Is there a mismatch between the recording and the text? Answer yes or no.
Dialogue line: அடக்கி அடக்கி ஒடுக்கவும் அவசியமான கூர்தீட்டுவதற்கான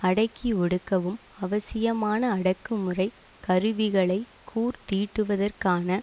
yes